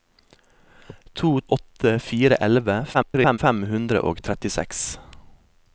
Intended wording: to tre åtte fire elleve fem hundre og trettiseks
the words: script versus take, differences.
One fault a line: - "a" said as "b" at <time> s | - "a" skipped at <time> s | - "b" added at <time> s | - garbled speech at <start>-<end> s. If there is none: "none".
- "tre" skipped at 1.3 s
- garbled speech at 2.9-3.4 s